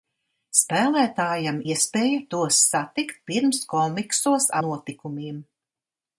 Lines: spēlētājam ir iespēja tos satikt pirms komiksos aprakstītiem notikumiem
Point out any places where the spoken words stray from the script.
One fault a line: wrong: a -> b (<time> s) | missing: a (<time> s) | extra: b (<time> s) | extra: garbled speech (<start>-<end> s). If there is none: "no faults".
missing: ir (1.6 s)
missing: aprakstītiem (4.5 s)